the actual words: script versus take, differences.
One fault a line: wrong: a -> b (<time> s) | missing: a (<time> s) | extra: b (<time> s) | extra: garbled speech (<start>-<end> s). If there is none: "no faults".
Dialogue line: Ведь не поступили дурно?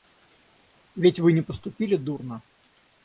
extra: вы (1.2 s)